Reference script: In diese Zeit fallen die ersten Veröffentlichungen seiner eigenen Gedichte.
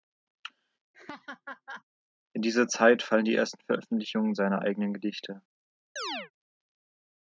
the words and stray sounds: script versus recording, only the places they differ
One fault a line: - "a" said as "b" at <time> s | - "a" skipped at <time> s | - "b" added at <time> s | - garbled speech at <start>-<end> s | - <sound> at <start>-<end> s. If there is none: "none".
- laugh at 0.9-1.8 s
- chirp at 6.0-6.3 s